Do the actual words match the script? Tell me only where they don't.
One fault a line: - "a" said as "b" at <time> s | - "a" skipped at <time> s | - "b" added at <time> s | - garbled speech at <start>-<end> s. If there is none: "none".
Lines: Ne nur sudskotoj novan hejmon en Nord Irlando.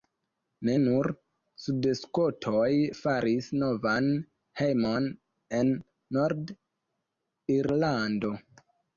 - "faris" added at 3.0 s